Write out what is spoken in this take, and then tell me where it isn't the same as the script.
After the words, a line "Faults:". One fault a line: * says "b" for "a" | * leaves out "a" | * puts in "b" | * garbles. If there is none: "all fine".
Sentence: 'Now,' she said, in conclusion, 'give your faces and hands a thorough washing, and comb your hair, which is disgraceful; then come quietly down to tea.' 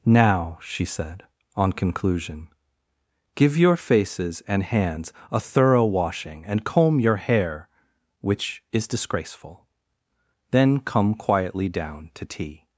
'Now,' she said, on conclusion, 'give your faces and hands a thorough washing, and comb your hair, which is disgraceful; then come quietly down to tea.'
Faults:
* says "on" for "in"